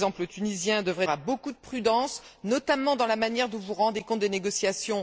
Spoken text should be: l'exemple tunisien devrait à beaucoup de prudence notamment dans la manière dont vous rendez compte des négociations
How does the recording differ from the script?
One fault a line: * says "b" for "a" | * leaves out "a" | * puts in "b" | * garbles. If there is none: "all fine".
all fine